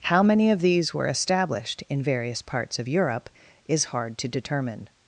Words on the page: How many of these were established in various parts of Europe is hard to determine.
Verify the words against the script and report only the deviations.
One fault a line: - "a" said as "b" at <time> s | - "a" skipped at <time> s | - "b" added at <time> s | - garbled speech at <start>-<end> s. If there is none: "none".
none